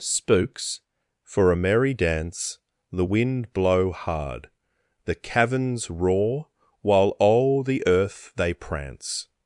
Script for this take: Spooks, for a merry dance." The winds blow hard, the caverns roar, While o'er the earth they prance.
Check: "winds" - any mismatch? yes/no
yes